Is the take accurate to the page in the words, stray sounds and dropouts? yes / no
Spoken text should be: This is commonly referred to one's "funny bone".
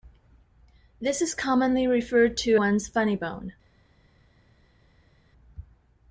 yes